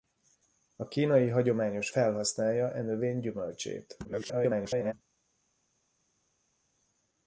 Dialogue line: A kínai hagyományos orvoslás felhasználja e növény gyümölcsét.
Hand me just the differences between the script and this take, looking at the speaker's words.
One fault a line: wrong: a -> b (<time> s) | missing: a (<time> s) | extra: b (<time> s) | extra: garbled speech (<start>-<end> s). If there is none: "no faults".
missing: orvoslás (1.9 s)
extra: garbled speech (4.0-4.9 s)